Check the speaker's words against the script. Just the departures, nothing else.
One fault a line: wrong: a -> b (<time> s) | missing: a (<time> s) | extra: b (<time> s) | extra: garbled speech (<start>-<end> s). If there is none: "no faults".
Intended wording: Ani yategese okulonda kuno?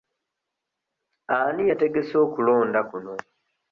no faults